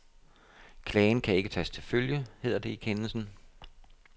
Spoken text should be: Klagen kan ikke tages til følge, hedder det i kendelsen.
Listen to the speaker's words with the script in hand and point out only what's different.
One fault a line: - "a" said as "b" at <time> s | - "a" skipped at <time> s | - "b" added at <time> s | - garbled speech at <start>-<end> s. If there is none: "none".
none